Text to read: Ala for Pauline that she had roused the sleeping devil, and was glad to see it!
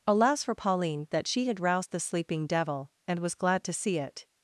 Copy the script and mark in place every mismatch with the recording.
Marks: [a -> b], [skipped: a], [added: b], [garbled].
[Ala -> Alas] for Pauline that she had roused the sleeping devil, and was glad to see it!